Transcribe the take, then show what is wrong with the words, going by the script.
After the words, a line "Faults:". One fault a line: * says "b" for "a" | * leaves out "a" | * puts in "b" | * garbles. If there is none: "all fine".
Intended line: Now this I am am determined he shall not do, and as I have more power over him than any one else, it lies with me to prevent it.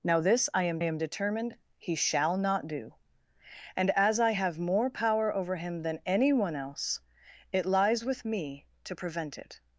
Now this I am am determined he shall not do, and as I have more power over him than any one else, it lies with me to prevent it.
Faults:
all fine